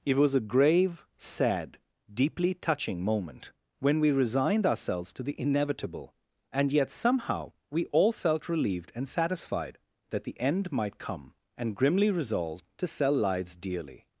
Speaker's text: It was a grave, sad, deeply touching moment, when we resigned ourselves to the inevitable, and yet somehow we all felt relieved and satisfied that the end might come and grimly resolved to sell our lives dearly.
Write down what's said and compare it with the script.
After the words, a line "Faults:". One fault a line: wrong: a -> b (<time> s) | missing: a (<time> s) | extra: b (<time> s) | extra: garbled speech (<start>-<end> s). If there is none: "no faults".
It was a grave, sad, deeply touching moment, when we resigned ourselves to the inevitable, and yet somehow we all felt relieved and satisfied that the end might come and grimly resolved to sell lives dearly.
Faults:
missing: our (13.1 s)